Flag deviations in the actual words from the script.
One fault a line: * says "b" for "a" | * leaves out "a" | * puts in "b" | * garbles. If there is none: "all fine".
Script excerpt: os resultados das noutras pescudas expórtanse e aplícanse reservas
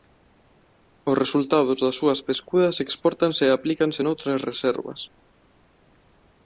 * says "súas" for "noutras"
* puts in "noutras"